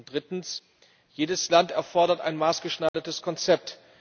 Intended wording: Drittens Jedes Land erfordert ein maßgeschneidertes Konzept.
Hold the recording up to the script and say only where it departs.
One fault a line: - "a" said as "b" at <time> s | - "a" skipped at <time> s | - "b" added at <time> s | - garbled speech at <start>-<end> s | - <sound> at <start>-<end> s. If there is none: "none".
- dropout at 2.9-2.9 s